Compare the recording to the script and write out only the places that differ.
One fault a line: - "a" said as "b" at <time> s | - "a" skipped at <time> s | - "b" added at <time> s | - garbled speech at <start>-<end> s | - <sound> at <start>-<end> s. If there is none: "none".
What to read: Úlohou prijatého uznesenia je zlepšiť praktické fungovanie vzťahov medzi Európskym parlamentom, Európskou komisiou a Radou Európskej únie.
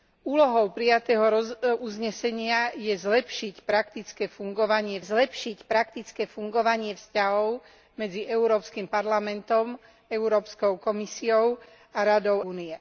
- "zlepšiť praktické fungovanie" added at 5.0 s
- "Európskej" skipped at 12.5 s